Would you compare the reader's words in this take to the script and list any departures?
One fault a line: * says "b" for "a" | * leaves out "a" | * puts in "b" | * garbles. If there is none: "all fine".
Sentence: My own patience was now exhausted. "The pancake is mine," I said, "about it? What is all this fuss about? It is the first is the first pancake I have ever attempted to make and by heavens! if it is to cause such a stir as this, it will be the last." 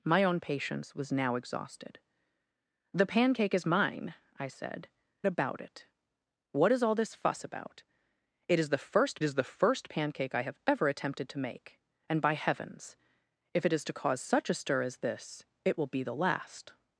all fine